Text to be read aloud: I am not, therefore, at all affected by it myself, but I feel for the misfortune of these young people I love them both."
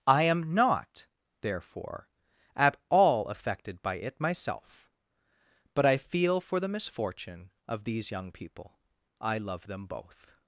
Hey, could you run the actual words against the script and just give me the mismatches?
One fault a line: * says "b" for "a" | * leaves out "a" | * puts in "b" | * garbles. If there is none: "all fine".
all fine